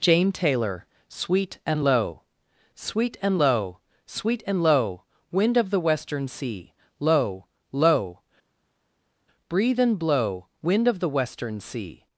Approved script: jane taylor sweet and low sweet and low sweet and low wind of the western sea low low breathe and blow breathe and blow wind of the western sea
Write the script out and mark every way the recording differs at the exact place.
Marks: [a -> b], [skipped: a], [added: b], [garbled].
jane taylor sweet and low sweet and low sweet and low wind of the western sea low low breathe and blow [skipped: breathe and blow] wind of the western sea